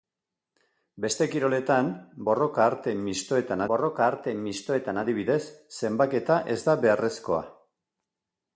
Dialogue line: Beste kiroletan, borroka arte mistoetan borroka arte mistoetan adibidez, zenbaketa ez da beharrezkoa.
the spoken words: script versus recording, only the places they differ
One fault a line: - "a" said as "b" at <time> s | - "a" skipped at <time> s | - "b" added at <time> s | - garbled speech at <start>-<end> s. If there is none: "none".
none